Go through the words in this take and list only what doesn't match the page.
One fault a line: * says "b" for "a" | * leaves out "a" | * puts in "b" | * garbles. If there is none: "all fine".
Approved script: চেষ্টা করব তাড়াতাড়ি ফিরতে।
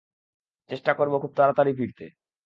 * puts in "খুব"